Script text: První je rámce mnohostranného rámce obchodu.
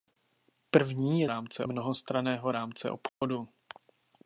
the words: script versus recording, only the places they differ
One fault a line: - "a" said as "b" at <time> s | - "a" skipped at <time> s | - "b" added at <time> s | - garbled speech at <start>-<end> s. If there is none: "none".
none